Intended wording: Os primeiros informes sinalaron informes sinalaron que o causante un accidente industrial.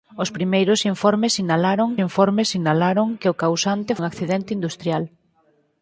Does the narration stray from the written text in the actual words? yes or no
no